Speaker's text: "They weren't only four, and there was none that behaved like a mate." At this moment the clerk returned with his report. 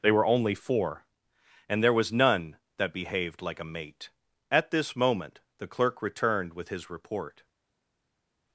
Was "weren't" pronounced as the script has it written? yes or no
no